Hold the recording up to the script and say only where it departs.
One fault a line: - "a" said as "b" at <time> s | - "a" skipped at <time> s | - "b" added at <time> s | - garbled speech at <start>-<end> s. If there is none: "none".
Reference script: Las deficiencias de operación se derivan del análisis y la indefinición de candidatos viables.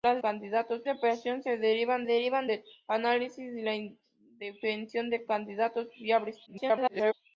- "deficiencias" said as "candidatos" at 0.2 s
- "derivan" added at 2.0 s
- garbled speech at 6.5-7.1 s